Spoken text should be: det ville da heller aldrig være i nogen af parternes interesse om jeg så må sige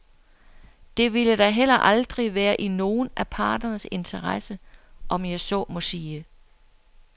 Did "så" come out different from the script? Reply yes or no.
no